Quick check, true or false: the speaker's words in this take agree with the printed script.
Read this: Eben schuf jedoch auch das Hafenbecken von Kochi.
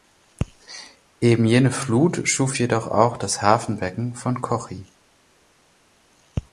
false